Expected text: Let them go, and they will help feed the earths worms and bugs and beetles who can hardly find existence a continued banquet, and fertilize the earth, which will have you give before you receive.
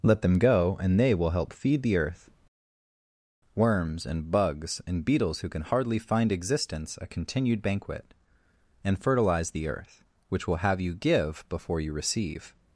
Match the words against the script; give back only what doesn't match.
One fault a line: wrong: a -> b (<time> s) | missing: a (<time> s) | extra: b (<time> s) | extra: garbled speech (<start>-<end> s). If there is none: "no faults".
wrong: earths -> earth (2.0 s)